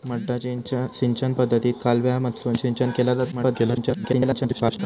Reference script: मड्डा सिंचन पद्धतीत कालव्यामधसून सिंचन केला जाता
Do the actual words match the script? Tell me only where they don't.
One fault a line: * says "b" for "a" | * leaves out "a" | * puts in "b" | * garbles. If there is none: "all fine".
* garbles